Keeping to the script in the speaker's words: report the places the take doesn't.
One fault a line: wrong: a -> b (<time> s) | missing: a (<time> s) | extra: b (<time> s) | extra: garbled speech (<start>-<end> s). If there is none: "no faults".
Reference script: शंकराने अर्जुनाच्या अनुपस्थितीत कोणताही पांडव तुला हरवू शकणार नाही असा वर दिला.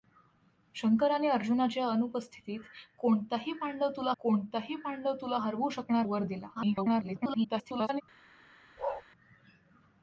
extra: कोणताही पांडव तुला (4.2 s)
missing: नाही असा (6.1 s)
extra: garbled speech (6.6-8.0 s)